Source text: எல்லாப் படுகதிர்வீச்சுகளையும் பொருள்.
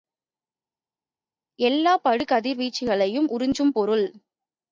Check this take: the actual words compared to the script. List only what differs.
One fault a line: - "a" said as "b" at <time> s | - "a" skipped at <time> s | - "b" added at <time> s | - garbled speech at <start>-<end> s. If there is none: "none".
- "உறிஞ்சும்" added at 3.3 s